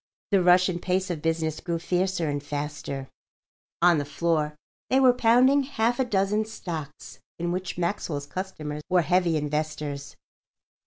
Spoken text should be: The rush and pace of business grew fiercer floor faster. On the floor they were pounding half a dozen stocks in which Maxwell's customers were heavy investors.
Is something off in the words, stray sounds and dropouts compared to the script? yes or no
yes